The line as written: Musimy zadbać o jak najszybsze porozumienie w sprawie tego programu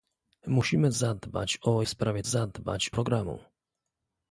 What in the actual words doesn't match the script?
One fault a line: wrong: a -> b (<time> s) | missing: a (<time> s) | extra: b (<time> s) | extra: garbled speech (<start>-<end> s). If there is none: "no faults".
missing: jak najszybsze porozumienie (1.8 s)
wrong: tego -> zadbać (2.2 s)